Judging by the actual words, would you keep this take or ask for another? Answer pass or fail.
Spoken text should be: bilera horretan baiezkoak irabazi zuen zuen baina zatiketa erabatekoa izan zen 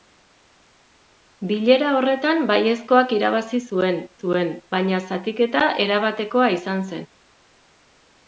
pass